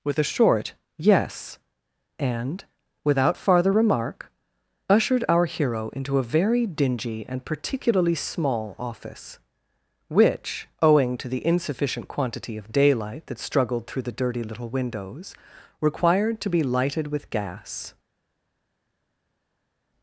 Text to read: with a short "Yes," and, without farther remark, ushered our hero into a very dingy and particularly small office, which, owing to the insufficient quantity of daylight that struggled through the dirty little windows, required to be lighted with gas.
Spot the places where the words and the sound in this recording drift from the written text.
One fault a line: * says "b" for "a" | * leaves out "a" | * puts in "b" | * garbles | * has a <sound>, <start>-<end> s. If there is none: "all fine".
all fine